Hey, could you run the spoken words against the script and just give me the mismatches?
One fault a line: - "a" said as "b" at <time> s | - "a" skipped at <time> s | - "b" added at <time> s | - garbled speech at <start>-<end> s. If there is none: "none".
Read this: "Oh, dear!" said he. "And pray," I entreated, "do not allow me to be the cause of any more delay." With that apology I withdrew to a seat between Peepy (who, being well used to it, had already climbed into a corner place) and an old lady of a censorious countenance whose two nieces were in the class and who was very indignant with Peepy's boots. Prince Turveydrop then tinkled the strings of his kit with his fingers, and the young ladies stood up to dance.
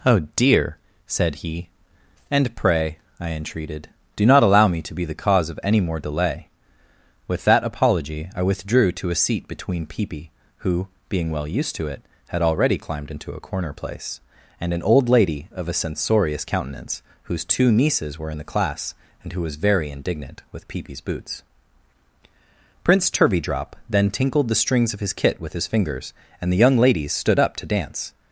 none